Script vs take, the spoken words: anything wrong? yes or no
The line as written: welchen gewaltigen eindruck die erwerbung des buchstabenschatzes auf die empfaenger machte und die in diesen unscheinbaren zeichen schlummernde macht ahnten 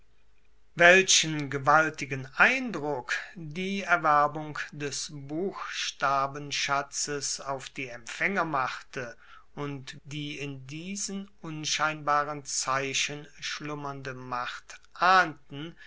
no